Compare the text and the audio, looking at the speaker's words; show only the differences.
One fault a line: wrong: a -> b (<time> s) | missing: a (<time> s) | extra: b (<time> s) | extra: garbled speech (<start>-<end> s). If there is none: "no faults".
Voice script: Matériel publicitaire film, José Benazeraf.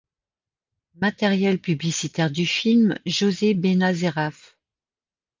extra: du (2.3 s)